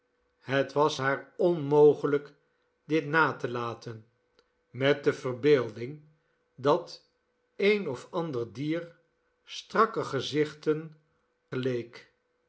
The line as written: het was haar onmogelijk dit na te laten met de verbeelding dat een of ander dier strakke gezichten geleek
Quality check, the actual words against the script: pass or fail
pass